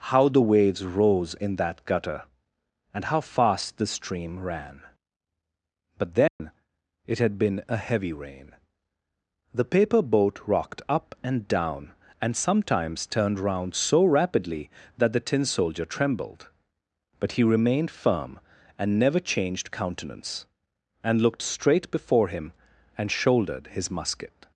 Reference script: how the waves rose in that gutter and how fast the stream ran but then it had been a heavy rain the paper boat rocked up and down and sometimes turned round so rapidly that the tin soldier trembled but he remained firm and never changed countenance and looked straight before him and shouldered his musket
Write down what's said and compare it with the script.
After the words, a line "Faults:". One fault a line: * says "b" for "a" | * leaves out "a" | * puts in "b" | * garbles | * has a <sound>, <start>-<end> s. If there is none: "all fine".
how the waves rose in that gutter and how fast the stream ran but then it had been a heavy rain the paper boat rocked up and down and sometimes turned round so rapidly that the tin soldier trembled but he remained firm and never changed countenance and looked straight before him and shouldered his musket
Faults:
* has a dropout, 6.3-6.4 s